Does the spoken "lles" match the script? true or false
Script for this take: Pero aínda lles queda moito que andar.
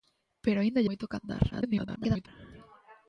false